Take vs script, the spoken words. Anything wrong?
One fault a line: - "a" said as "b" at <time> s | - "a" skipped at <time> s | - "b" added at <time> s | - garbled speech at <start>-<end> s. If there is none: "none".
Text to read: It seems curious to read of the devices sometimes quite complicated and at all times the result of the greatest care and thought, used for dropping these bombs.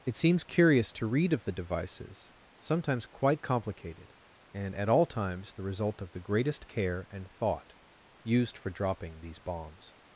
none